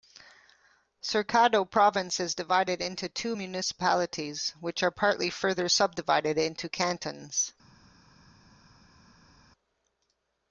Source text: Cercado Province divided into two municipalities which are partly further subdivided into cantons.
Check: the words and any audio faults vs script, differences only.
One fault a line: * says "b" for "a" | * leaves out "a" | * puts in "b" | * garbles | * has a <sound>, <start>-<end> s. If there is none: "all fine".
* puts in "is"